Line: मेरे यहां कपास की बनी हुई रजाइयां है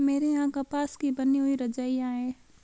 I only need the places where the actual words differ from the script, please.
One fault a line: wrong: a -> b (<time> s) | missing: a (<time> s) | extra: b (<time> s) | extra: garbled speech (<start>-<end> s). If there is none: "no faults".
no faults